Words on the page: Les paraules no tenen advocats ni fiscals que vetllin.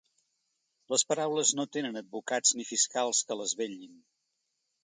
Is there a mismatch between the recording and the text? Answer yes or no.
yes